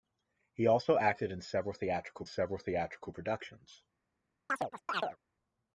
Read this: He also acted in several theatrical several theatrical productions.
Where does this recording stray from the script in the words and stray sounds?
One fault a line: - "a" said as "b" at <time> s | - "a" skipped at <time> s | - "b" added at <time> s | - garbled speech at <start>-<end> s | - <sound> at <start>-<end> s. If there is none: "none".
- chirp at 4.5-5.2 s